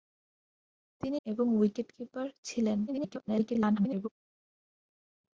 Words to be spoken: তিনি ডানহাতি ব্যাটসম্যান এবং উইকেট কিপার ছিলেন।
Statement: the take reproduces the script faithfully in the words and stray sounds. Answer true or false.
false